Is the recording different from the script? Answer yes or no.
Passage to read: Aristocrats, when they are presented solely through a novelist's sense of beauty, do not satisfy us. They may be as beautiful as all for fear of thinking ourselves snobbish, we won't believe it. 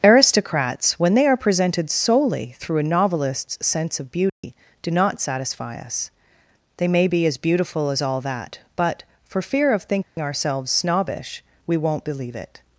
yes